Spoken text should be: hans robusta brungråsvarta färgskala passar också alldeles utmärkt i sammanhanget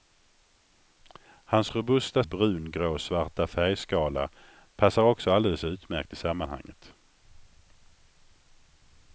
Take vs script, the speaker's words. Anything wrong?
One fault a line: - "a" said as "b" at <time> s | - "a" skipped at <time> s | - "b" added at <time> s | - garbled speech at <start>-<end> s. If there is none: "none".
none